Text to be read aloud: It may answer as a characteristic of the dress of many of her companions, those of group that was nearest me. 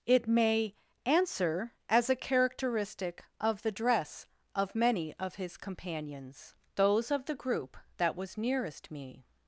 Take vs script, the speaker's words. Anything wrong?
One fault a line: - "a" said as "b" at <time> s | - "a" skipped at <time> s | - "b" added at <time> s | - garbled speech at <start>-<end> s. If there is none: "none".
- "her" said as "his" at 5.3 s
- "the" added at 7.2 s